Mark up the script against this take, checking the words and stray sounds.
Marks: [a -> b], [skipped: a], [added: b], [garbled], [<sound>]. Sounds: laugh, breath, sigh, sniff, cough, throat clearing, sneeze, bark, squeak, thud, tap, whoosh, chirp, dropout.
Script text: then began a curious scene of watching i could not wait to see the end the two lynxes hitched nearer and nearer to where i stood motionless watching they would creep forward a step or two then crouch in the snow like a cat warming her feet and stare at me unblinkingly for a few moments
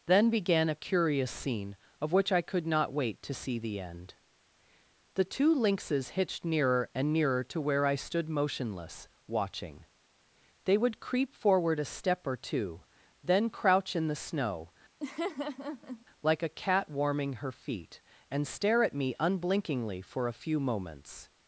then began a curious scene of [watching -> which] i could not wait to see the end the two lynxes hitched nearer and nearer to where i stood motionless watching they would creep forward a step or two then crouch in the snow [laugh] like a cat warming her feet and stare at me unblinkingly for a few moments